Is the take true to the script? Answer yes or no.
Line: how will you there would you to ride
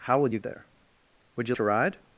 yes